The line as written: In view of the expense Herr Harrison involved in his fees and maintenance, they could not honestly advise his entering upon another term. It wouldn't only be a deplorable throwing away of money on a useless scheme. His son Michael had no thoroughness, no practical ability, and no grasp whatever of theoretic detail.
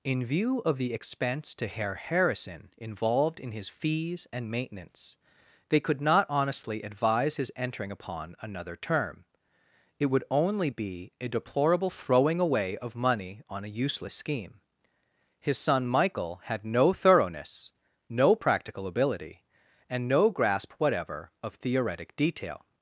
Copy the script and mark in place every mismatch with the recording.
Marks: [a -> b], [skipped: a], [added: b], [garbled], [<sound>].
In view of the expense [added: to] Herr Harrison involved in his fees and maintenance, they could not honestly advise his entering upon another term. It [wouldn't -> would] only be a deplorable throwing away of money on a useless scheme. His son Michael had no thoroughness, no practical ability, and no grasp whatever of theoretic detail.